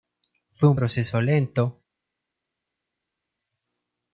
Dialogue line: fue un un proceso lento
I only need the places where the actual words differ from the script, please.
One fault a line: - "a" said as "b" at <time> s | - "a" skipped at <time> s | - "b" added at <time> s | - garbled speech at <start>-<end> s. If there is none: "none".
- "un" skipped at 0.8 s